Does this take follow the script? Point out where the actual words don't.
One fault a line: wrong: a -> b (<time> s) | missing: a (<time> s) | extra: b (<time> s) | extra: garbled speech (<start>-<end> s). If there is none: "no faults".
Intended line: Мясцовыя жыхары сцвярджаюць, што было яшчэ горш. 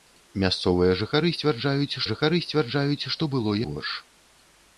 extra: жыхары сцвярджаюць (2.1 s)
missing: яшчэ (3.6 s)